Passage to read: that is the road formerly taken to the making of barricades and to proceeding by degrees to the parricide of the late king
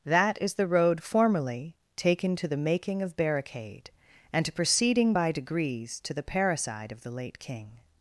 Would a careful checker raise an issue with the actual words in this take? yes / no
yes